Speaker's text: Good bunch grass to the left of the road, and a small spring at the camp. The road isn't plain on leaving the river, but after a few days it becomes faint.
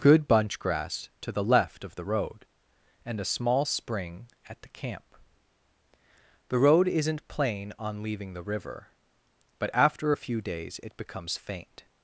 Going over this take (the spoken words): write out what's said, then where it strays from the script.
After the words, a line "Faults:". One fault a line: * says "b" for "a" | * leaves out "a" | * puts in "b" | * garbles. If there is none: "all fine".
Good bunch grass to the left of the road, and a small spring at the camp. The road isn't plain on leaving the river, but after a few days it becomes faint.
Faults:
all fine